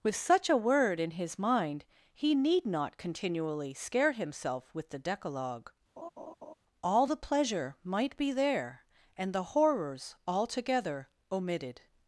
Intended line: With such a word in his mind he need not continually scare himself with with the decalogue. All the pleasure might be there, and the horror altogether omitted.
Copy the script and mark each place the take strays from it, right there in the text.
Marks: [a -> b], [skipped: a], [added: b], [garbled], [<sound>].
With such a word in his mind he need not continually scare himself with [skipped: with] the decalogue. [laugh] All the pleasure might be there, and the [horror -> horrors] altogether omitted.